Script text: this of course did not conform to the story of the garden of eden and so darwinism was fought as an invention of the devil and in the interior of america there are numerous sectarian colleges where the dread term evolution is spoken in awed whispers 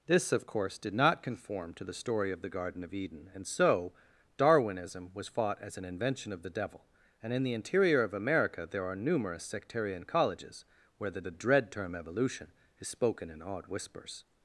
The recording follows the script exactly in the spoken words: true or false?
false